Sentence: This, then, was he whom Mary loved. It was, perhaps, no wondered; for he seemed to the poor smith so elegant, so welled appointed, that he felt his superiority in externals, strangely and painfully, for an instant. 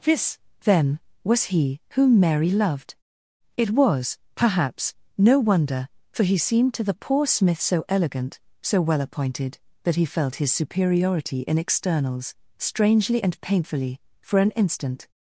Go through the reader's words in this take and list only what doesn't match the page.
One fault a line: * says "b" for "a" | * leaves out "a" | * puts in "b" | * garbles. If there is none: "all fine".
* says "wonder" for "wondered"
* says "well" for "welled"